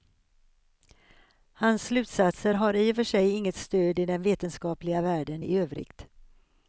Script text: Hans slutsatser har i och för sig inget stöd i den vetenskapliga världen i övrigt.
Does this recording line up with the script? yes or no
yes